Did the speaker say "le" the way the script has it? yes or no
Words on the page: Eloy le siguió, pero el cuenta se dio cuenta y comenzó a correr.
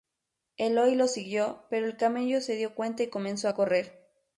no